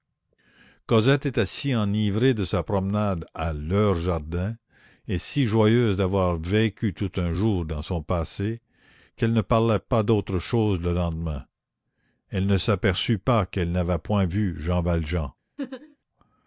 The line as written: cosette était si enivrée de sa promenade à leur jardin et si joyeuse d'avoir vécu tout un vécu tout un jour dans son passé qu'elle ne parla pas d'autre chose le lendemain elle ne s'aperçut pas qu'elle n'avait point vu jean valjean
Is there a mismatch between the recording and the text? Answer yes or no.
yes